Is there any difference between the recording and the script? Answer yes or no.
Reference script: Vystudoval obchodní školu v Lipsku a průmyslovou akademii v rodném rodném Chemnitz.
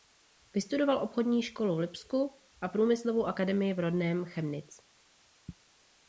yes